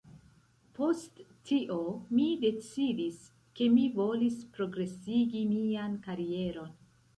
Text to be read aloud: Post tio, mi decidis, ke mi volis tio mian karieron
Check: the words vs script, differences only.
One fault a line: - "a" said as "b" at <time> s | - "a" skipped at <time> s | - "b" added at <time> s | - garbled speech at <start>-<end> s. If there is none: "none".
- "tio" said as "progresigi" at 4.6 s